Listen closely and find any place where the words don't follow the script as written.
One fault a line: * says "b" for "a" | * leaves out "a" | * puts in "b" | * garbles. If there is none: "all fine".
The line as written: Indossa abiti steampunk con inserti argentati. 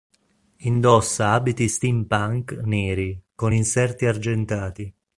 * puts in "neri"